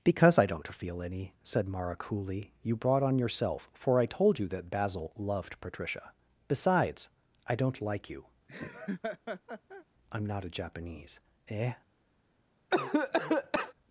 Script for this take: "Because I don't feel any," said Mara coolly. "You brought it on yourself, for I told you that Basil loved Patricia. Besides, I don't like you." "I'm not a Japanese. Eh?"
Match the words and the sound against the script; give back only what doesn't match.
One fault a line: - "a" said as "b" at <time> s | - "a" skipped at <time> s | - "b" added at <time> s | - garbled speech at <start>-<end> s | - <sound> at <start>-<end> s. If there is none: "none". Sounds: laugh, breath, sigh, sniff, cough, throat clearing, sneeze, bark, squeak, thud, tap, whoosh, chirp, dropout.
- "it" skipped at 3.0 s
- laugh at 8.5-9.8 s
- cough at 12.7-13.7 s